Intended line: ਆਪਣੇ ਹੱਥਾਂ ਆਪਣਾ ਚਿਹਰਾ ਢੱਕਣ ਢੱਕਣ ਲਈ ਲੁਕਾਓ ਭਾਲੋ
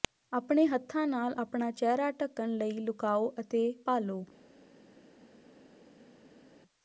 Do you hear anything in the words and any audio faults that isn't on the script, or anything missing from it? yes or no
yes